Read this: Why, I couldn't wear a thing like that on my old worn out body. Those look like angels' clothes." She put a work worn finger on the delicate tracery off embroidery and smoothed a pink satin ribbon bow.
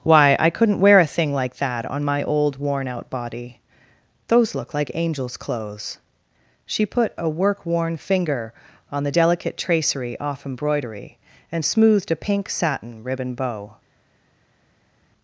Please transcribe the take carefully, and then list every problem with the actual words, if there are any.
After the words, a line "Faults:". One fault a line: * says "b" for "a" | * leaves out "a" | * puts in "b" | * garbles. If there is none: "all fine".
Why, I couldn't wear a thing like that on my old worn out body. Those look like angels' clothes." She put a work worn finger on the delicate tracery off embroidery and smoothed a pink satin ribbon bow.
Faults:
all fine